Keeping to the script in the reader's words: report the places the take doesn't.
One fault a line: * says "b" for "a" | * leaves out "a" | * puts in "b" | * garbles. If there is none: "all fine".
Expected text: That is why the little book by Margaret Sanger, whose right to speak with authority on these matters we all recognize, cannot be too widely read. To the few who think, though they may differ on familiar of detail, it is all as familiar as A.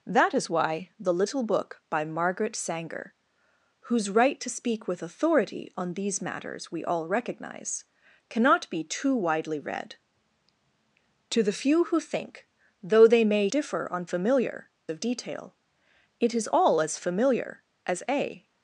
all fine